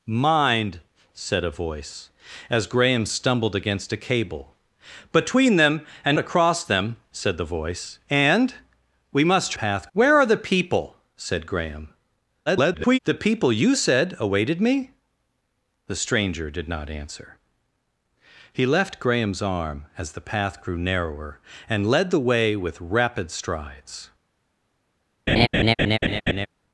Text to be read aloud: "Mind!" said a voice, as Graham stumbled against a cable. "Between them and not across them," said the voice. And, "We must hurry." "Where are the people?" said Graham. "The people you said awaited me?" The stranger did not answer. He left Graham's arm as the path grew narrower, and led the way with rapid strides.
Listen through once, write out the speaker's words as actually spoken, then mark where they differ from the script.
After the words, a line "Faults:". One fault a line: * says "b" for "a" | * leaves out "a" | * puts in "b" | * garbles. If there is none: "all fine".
"Mind!" said a voice, as Graham stumbled against a cable. "Between them and across them," said the voice. And, "We must path." "Where are the people?" said Graham. [garbled] "The people you said awaited me?" The stranger did not answer. He left Graham's arm as the path grew narrower, and led the way with rapid strides.
Faults:
* leaves out "not"
* says "path" for "hurry"
* garbles